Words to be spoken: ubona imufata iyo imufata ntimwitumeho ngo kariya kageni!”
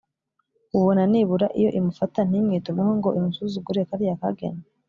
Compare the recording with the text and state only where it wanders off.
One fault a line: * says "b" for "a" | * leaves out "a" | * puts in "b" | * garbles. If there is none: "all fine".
* says "nibura" for "imufata"
* puts in "imusuzugure"